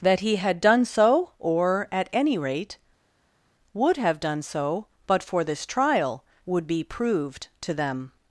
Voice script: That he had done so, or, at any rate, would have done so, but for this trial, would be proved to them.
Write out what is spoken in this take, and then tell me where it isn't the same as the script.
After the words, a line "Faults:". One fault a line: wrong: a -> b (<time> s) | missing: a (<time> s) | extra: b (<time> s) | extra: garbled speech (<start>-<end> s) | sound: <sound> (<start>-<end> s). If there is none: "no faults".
That he had done so, or, at any rate, would have done so, but for this trial, would be proved to them.
Faults:
no faults